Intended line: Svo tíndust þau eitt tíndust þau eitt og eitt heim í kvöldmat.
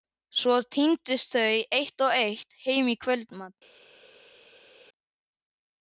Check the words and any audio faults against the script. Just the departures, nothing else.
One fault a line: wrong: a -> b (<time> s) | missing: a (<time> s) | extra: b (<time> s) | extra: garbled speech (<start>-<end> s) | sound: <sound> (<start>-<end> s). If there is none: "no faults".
missing: tíndust þau eitt (2.0 s)